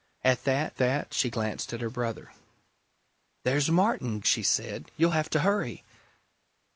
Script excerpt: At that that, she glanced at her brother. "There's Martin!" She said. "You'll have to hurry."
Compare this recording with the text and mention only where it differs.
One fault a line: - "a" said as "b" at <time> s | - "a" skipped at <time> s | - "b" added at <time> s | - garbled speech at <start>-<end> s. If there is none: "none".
none